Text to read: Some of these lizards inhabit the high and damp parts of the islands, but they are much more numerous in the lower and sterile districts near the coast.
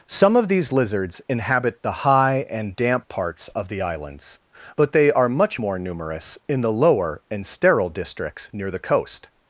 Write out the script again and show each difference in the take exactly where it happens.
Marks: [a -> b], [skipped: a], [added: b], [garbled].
Some of these lizards inhabit the high and damp parts of the islands, but they are much more numerous in the lower and sterile districts near the coast.